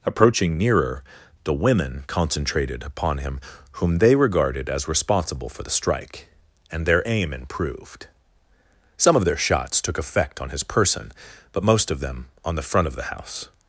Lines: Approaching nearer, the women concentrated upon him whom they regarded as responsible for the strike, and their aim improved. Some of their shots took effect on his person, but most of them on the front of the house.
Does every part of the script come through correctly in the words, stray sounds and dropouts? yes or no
yes